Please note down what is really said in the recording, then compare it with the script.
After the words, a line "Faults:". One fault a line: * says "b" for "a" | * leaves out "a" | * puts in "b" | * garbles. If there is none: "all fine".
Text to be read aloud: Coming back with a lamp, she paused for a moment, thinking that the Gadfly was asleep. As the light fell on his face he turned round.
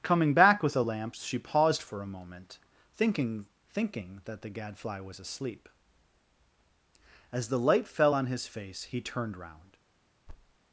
Coming back with a lamp, she paused for a moment, thinking thinking that the Gadfly was asleep. As the light fell on his face he turned round.
Faults:
* puts in "thinking"